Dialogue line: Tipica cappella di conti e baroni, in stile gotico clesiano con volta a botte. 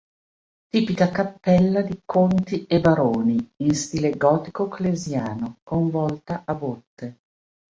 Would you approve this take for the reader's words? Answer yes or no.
yes